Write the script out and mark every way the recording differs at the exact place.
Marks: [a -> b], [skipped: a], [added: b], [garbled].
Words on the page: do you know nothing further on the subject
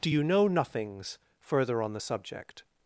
do you know [nothing -> nothings] further on the subject